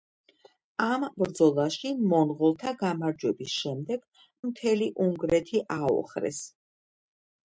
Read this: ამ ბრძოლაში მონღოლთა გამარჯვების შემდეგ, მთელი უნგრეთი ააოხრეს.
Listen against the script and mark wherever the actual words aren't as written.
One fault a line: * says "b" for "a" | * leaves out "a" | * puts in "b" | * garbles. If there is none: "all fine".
all fine